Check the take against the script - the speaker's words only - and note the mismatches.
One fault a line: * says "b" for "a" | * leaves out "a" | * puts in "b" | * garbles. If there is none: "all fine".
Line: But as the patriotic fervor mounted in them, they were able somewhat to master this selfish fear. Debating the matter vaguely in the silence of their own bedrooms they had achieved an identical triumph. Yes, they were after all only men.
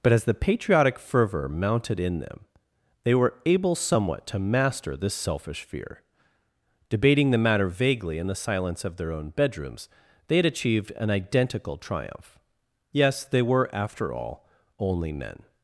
all fine